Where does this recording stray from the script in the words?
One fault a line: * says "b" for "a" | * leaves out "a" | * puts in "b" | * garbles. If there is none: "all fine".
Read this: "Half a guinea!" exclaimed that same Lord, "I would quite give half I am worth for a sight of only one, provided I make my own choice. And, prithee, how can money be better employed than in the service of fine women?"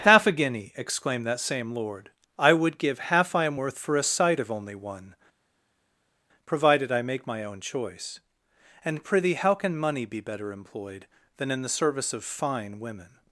* leaves out "quite"